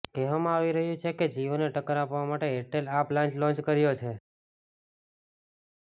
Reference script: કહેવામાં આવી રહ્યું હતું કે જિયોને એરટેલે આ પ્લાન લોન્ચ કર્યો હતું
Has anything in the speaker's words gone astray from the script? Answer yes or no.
yes